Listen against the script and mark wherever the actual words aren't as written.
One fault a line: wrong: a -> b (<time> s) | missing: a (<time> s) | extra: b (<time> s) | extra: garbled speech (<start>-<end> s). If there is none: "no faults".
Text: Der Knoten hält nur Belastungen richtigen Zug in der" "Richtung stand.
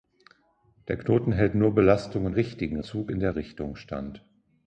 no faults